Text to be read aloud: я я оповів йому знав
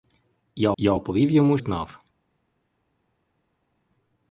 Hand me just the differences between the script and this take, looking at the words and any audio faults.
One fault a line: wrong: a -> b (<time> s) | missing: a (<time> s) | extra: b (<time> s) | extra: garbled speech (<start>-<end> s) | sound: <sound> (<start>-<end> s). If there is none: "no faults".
no faults